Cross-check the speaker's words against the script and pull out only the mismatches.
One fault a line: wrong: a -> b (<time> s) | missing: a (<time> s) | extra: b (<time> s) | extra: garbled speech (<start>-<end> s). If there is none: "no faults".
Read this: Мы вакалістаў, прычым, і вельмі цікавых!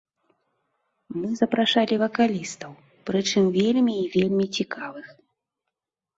extra: запрашалі (1.4 s)
extra: вельмі (3.6 s)